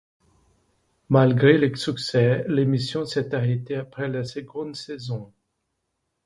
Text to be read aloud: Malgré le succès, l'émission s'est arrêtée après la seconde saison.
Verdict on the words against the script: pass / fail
pass